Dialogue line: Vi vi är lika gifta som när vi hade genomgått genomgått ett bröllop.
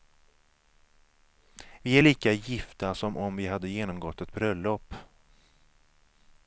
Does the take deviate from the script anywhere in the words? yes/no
yes